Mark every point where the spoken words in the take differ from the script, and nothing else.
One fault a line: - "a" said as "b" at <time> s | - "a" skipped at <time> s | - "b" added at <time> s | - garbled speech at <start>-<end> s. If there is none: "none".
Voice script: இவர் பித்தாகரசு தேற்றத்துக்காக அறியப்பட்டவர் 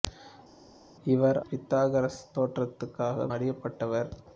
none